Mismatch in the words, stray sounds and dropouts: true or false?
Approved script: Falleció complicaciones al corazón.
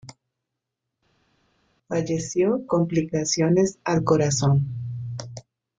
false